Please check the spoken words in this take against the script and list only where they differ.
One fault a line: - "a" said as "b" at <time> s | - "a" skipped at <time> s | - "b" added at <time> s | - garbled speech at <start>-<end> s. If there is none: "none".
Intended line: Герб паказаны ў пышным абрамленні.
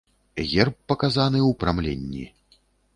- "пышным" skipped at 1.5 s